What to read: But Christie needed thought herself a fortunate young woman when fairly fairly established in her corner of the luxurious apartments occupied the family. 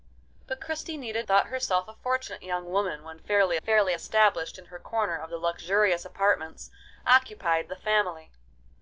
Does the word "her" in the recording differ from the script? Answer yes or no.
no